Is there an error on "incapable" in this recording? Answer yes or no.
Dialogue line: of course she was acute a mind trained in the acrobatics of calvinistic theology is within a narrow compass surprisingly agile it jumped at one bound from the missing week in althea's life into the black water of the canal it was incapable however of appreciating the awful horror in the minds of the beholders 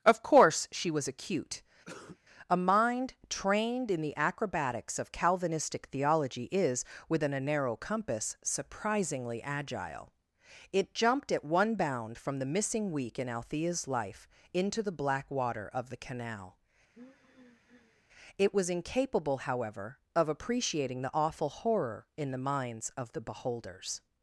no